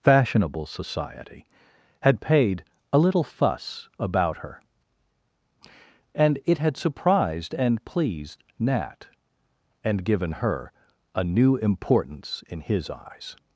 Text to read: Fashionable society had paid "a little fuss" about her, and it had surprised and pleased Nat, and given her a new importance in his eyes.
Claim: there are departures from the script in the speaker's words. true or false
false